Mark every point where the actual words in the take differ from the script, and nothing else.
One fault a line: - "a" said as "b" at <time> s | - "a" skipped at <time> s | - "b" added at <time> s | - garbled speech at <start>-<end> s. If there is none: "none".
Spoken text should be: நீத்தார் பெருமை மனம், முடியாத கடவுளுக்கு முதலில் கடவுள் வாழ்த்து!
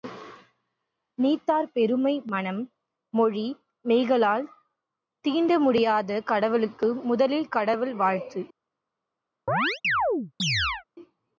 - "மொழி மெய்களால் தீண்ட" added at 3.1 s